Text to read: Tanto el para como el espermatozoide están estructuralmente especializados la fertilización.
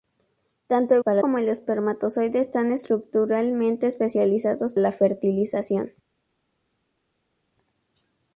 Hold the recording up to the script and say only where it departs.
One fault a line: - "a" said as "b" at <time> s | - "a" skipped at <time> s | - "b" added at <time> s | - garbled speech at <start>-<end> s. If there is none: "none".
none